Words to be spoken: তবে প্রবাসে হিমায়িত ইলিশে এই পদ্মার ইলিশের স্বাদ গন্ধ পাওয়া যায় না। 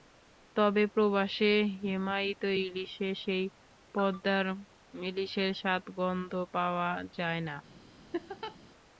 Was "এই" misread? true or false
true